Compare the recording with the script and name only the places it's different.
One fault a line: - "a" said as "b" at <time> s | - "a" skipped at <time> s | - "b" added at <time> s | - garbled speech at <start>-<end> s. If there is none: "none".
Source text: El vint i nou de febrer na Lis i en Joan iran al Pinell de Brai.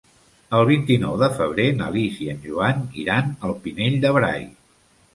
none